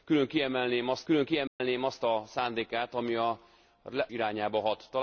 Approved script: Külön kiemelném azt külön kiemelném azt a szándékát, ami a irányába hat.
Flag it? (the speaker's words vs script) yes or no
no